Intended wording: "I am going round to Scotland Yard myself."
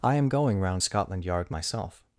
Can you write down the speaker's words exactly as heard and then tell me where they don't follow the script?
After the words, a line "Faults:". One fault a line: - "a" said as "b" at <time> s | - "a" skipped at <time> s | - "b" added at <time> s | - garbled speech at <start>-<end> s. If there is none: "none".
"I am going round Scotland Yard myself."
Faults:
- "to" skipped at 0.8 s